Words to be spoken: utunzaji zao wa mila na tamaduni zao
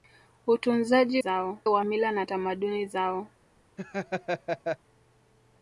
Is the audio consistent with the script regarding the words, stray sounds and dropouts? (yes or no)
no